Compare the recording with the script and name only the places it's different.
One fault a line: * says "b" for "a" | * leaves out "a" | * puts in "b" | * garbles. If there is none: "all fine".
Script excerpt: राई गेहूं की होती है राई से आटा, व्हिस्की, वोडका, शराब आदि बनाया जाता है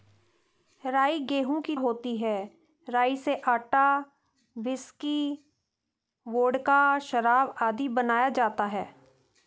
all fine